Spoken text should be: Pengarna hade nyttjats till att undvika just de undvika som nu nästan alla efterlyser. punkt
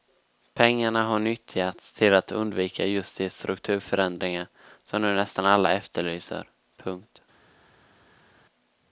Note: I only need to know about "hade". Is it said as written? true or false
false